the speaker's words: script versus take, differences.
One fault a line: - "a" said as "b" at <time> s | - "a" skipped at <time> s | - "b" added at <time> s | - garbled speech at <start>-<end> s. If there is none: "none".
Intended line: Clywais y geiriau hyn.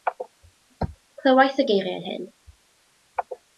none